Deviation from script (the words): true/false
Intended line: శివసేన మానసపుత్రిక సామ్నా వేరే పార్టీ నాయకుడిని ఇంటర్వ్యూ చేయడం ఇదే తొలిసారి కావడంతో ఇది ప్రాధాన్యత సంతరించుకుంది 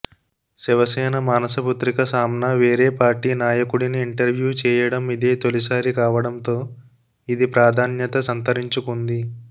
false